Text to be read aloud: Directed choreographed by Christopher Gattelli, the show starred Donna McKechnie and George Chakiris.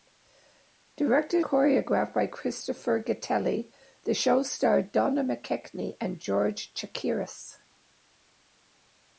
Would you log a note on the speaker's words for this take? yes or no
no